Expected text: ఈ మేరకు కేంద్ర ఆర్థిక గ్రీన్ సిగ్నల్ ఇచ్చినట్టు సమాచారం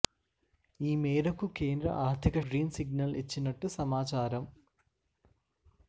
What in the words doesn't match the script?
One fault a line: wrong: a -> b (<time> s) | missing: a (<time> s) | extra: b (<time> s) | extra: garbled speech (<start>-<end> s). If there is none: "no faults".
no faults